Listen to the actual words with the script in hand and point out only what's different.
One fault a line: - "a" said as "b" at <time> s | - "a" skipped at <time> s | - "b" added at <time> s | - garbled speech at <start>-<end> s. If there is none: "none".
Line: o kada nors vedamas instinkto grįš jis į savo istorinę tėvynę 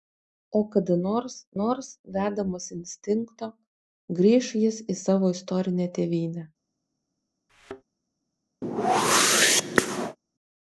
- "nors" added at 1.6 s